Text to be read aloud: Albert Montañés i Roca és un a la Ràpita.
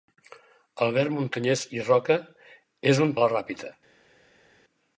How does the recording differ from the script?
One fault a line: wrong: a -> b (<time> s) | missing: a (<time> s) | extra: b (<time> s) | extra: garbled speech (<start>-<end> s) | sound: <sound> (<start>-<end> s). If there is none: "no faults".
no faults